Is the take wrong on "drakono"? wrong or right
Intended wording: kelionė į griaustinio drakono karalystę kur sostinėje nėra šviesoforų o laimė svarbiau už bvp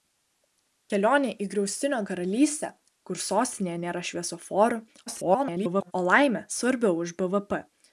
wrong